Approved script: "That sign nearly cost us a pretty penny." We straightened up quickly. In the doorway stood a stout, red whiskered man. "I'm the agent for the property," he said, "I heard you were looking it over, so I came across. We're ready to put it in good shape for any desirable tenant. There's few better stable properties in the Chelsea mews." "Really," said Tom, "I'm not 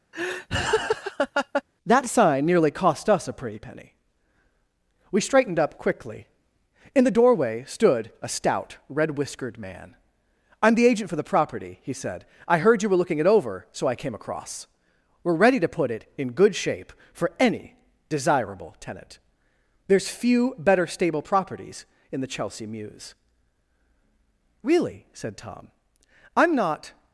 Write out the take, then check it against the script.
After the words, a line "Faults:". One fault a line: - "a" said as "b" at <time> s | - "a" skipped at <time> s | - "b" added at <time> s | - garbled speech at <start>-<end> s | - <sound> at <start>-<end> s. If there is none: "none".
"That sign nearly cost us a pretty penny." We straightened up quickly. In the doorway stood a stout, red whiskered man. "I'm the agent for the property," he said, "I heard you were looking it over, so I came across. We're ready to put it in good shape for any desirable tenant. There's few better stable properties in the Chelsea mews." "Really," said Tom, "I'm not
Faults:
- laugh at 0.1-1.6 s